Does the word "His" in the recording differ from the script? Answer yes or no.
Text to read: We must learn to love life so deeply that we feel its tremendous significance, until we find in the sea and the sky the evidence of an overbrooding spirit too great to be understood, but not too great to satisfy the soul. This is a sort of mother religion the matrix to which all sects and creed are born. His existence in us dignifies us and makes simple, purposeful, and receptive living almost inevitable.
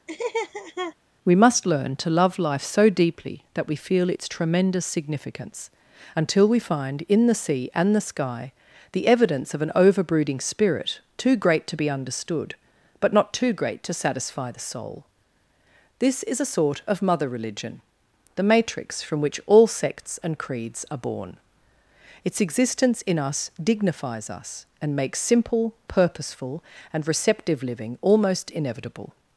yes